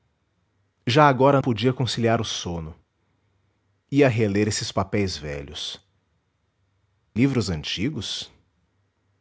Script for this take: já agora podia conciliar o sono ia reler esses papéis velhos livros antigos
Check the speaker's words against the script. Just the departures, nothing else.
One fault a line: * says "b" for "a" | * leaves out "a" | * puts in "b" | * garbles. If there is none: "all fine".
all fine